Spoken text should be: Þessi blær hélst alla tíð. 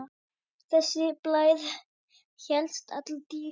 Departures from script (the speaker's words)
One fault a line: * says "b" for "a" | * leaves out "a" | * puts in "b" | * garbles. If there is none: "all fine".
all fine